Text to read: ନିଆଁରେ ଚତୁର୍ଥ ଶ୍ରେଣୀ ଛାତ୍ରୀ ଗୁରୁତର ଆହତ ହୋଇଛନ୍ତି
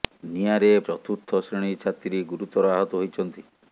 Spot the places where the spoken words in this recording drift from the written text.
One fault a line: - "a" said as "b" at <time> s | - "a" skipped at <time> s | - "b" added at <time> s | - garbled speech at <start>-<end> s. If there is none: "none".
none